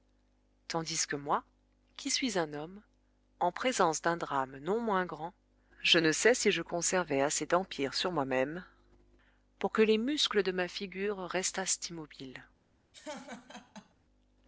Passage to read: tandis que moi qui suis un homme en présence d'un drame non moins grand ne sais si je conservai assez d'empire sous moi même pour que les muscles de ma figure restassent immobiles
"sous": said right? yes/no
no